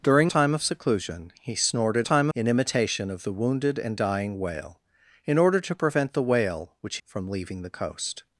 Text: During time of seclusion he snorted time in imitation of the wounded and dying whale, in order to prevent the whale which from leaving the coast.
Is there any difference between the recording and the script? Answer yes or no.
no